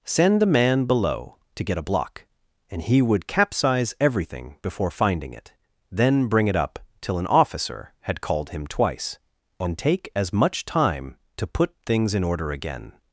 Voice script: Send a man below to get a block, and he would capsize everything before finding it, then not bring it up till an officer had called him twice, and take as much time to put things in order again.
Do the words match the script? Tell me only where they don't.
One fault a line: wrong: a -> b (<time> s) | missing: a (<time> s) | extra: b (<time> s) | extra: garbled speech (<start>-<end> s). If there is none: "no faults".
missing: not (6.3 s)